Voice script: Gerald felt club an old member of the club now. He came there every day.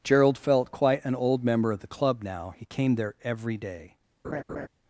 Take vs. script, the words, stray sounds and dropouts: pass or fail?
fail